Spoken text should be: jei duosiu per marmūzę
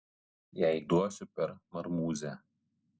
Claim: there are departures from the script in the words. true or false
false